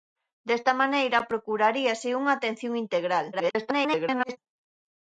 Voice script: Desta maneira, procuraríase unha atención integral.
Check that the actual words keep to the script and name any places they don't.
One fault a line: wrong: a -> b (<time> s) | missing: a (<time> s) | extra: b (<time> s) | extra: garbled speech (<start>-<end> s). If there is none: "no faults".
extra: garbled speech (3.3-4.4 s)